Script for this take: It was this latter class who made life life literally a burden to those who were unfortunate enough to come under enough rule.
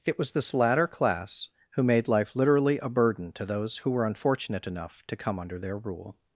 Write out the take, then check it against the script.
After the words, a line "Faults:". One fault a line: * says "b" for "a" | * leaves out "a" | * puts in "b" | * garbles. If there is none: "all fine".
It was this latter class who made life literally a burden to those who were unfortunate enough to come under their rule.
Faults:
* leaves out "life"
* says "their" for "enough"